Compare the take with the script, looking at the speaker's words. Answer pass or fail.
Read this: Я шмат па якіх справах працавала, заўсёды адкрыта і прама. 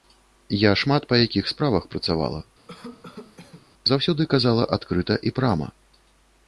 fail